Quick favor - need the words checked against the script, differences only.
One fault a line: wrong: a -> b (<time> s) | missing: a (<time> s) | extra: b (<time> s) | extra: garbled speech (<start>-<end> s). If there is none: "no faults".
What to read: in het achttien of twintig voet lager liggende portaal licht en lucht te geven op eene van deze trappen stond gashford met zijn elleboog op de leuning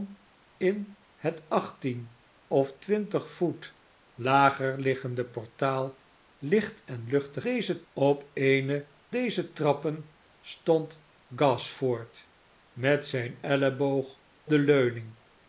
wrong: geven -> deze (7.4 s)
missing: van (8.9 s)
missing: op (14.2 s)